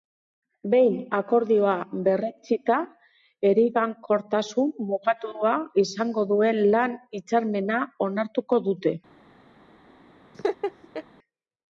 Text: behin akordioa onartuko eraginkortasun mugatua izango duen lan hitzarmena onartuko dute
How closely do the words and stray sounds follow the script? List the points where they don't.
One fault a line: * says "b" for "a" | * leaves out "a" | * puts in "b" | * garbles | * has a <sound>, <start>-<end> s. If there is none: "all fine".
* says "berretsita" for "onartuko"
* has a laugh, 10.3-11.0 s